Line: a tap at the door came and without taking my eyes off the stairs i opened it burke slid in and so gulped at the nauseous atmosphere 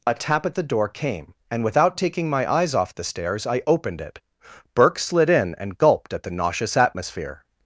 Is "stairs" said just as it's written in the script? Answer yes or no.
yes